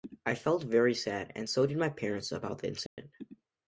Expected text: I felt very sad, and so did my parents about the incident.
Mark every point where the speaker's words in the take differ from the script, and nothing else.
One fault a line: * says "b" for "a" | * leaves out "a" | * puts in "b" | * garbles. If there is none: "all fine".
all fine